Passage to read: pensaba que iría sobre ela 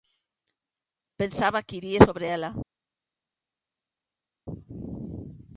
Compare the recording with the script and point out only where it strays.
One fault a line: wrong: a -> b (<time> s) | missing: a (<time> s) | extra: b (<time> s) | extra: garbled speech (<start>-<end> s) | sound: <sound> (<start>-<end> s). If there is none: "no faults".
no faults